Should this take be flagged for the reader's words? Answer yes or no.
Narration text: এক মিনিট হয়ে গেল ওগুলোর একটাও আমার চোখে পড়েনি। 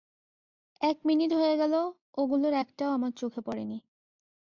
no